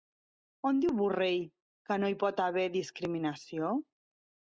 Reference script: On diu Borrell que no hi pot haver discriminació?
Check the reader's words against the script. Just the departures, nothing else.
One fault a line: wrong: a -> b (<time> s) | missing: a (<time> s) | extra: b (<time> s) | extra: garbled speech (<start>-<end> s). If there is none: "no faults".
no faults